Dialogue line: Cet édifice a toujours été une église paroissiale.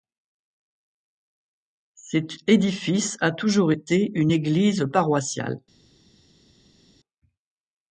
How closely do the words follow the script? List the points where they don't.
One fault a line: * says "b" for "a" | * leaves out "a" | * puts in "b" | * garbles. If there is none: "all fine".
all fine